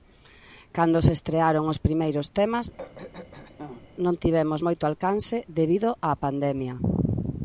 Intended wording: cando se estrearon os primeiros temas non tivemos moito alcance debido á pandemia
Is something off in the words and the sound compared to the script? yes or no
yes